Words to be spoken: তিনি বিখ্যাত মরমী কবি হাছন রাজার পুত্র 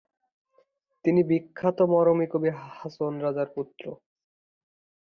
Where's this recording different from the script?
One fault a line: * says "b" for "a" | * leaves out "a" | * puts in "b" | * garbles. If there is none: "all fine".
all fine